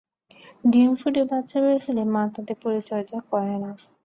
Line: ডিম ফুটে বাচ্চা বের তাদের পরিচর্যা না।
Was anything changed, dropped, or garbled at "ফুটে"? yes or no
no